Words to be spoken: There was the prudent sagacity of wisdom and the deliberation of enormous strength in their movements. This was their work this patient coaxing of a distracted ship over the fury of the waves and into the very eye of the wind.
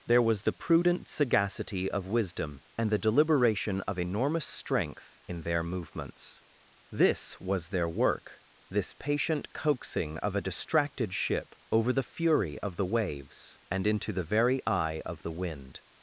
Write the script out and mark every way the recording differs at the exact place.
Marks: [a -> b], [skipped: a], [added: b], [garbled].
There was the prudent sagacity of wisdom and the deliberation of enormous strength in their movements. This was their work this patient coaxing of a distracted ship over the fury of the waves and into the very eye of the wind.